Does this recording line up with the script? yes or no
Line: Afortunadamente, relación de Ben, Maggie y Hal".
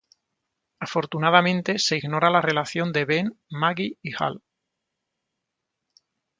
no